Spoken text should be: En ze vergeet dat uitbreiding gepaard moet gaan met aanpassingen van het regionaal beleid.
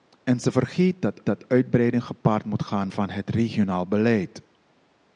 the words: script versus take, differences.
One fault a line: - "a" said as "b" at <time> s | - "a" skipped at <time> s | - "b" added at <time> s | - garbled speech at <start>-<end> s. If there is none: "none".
- "dat" added at 1.2 s
- "met aanpassingen" skipped at 2.9 s